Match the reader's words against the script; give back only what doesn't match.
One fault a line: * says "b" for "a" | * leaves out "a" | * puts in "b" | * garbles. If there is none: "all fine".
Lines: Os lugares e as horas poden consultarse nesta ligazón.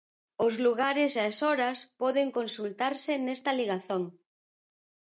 all fine